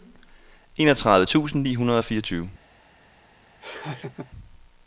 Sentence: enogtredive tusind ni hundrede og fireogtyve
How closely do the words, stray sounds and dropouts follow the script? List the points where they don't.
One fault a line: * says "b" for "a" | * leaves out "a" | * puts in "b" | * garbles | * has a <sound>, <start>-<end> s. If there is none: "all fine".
* has a laugh, 3.6-4.3 s